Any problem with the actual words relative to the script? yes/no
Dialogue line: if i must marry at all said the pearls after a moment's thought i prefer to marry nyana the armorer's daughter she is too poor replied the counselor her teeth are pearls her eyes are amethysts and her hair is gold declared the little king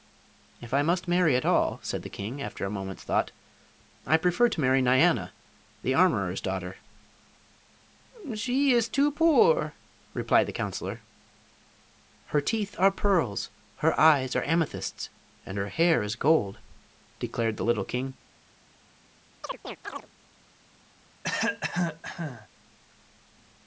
yes